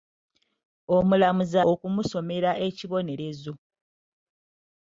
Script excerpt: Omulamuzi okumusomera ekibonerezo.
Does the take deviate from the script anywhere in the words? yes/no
no